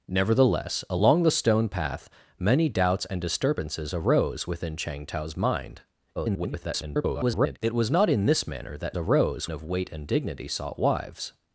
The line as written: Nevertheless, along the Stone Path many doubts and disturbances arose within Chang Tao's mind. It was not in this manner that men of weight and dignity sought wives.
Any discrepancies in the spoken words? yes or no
yes